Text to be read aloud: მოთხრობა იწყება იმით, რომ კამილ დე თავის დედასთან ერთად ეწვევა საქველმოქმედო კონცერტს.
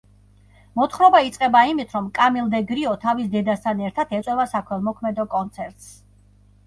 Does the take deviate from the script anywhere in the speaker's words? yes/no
yes